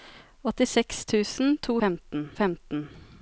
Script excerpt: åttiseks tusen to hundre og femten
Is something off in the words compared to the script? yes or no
yes